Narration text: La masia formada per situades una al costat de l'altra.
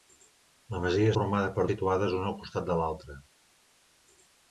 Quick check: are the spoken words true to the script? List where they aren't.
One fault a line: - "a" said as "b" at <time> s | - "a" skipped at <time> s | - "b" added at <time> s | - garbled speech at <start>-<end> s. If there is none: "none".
none